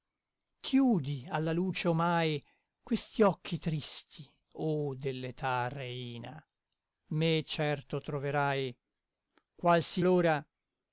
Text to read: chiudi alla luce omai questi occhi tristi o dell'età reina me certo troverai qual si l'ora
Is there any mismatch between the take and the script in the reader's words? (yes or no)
no